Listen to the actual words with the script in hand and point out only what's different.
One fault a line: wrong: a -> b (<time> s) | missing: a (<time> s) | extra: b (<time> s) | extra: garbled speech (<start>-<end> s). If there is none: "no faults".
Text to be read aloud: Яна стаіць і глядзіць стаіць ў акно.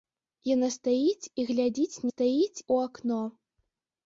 no faults